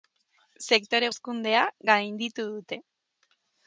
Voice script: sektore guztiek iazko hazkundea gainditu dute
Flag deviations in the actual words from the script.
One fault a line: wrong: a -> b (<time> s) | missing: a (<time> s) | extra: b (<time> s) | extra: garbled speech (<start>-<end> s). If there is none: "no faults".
missing: guztiek iazko (1.1 s)